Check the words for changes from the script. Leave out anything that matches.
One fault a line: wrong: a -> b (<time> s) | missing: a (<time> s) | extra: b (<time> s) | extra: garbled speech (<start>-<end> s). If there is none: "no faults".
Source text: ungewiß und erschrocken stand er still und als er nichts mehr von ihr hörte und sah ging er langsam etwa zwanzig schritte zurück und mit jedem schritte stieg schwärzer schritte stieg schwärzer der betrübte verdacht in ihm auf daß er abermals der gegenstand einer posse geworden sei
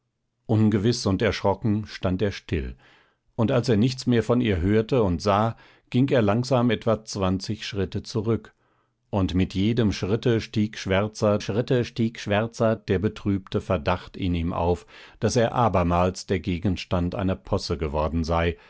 no faults